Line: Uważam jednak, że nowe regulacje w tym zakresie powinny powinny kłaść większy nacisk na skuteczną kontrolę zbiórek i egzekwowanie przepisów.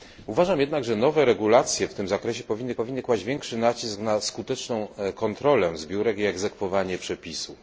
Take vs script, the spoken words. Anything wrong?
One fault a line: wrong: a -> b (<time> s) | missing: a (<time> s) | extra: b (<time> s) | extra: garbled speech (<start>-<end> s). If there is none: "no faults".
no faults